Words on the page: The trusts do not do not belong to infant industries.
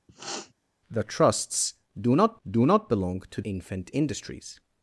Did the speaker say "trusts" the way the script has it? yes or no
yes